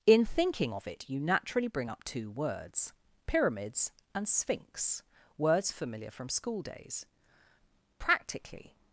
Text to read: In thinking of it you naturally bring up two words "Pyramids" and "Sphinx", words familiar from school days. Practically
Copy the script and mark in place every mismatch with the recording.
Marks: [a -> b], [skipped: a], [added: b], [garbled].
In thinking of it you naturally bring up two words "Pyramids" and "Sphinx", words familiar from school days. Practically